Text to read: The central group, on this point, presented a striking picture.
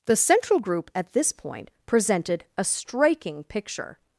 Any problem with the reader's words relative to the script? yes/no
yes